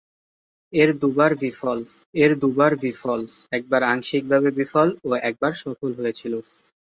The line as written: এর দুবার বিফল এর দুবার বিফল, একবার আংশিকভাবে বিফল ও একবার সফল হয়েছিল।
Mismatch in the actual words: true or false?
false